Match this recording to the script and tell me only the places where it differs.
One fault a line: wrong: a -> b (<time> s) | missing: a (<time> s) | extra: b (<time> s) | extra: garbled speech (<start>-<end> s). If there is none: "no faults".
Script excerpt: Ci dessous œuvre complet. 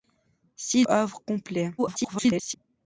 missing: dessous (0.9 s)
extra: garbled speech (1.8-2.6 s)